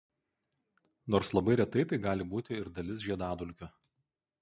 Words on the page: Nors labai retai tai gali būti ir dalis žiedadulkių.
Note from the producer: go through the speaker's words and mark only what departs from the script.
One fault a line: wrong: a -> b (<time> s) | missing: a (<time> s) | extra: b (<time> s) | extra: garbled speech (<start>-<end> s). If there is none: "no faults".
no faults